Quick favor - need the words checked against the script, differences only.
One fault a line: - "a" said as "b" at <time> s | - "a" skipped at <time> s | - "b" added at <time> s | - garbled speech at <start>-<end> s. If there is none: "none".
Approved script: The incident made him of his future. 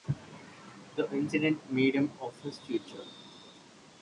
none